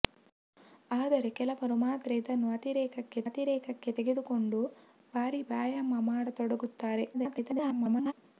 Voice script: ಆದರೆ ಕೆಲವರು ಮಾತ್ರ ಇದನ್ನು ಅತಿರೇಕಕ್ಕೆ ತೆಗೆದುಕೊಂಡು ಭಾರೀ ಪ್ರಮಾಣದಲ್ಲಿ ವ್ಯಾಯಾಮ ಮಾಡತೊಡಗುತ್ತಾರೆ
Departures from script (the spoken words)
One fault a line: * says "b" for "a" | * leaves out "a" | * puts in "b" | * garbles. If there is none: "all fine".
* puts in "ಅತಿರೇಕಕ್ಕೆ"
* leaves out "ಪ್ರಮಾಣದಲ್ಲಿ"
* garbles